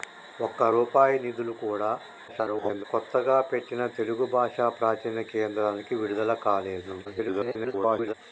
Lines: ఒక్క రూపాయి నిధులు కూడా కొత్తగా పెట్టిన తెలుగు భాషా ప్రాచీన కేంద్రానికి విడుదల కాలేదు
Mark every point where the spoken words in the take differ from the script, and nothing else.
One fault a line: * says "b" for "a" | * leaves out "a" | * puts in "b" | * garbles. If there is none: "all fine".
* garbles
* garbles